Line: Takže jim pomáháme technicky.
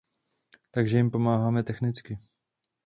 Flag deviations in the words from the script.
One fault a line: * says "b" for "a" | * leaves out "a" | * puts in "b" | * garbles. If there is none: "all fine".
all fine